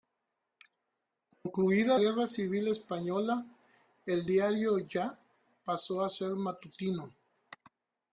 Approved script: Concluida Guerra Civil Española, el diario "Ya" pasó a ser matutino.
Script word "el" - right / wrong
right